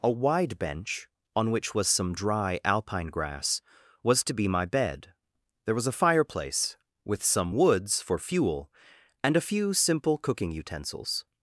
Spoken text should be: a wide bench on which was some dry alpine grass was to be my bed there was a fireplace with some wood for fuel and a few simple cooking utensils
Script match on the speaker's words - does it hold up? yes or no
no